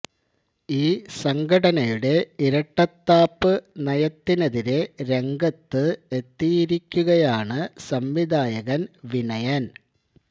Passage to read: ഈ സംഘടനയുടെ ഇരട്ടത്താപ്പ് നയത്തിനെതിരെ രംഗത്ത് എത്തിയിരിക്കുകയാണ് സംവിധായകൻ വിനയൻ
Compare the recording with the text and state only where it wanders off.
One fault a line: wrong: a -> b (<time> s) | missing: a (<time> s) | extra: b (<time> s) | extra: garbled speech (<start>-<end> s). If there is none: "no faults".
no faults